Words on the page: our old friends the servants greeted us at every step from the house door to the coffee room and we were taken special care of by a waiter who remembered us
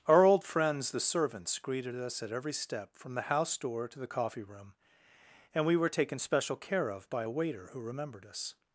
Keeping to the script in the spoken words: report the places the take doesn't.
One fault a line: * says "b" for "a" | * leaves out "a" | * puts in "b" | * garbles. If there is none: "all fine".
all fine